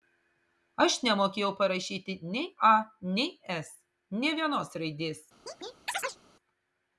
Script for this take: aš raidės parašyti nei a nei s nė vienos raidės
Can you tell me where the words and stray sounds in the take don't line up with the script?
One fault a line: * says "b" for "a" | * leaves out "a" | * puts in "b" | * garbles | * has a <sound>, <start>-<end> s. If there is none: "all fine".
* says "nemokėjau" for "raidės"
* has a chirp, 5.5-6.2 s